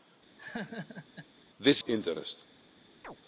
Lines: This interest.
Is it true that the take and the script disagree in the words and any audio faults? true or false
true